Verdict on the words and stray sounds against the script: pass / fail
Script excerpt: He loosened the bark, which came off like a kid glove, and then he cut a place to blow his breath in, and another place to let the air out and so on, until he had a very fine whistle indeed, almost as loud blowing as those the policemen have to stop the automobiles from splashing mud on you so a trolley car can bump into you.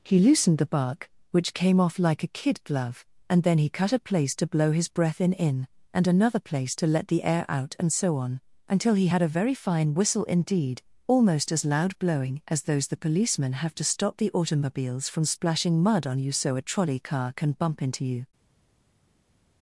fail